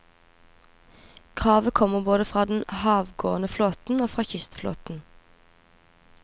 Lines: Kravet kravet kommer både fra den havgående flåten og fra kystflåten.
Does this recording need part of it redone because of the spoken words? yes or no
yes